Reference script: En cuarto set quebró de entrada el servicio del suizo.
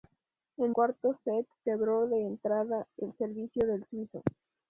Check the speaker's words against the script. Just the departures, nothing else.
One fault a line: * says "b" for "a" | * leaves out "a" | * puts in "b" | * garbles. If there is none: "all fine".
all fine